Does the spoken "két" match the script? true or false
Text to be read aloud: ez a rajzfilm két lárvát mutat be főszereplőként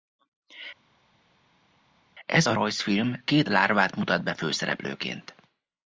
true